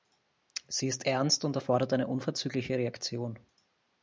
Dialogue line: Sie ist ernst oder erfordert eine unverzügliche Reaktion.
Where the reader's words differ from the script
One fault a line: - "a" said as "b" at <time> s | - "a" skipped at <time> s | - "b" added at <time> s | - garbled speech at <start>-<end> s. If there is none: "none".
- "oder" said as "und" at 1.4 s